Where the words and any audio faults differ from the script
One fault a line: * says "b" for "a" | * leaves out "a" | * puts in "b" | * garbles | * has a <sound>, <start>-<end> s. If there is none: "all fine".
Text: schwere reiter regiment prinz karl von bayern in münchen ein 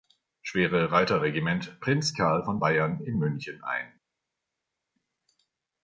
all fine